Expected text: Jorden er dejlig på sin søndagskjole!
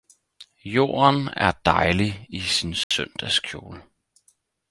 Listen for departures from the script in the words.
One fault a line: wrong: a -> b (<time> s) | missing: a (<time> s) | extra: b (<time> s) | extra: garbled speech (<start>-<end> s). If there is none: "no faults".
wrong: på -> i (2.3 s)